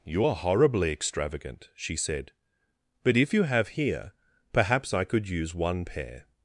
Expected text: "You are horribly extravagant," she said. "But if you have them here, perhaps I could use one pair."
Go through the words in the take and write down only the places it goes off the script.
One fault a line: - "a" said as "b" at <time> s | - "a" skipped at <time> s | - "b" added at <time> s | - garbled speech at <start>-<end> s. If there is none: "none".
- "them" skipped at 3.7 s